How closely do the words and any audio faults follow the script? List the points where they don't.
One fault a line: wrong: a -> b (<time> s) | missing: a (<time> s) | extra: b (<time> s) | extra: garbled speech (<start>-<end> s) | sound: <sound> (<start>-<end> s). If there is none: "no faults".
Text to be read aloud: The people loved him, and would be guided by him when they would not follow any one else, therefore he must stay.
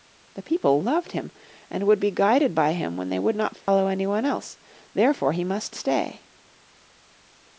sound: dropout (3.6-3.7 s)